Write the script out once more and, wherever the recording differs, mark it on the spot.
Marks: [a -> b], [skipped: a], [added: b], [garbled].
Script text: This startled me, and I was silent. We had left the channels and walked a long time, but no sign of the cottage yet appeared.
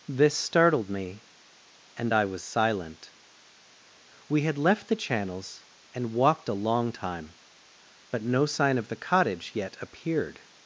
This startled me, and I was silent. We had left the channels and walked a long time, but no sign of the cottage yet appeared.